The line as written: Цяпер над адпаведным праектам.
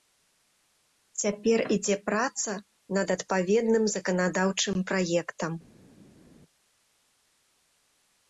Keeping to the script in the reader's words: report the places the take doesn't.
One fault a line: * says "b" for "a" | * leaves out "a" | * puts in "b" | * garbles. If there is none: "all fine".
* puts in "ідзе праца"
* puts in "заканадаўчым"